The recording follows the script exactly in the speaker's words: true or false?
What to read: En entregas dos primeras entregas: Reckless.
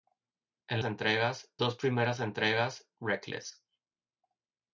true